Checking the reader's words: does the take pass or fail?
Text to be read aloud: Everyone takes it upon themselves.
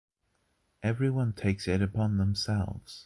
pass